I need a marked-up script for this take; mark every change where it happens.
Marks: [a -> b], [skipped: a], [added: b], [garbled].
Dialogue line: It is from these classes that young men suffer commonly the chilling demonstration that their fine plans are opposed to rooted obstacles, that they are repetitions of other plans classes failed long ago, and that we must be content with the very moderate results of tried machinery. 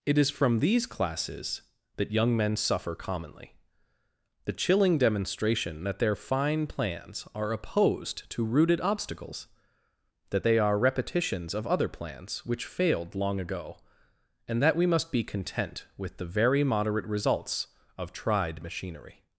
It is from these classes that young men suffer commonly the chilling demonstration that their fine plans are opposed to rooted obstacles, that they are repetitions of other plans [classes -> which] failed long ago, and that we must be content with the very moderate results of tried machinery.